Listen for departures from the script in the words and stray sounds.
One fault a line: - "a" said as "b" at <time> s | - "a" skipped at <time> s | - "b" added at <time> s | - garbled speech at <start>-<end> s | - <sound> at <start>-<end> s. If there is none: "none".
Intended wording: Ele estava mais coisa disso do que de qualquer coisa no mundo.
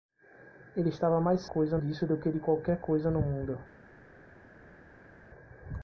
none